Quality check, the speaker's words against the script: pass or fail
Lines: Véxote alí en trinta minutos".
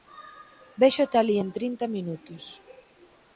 pass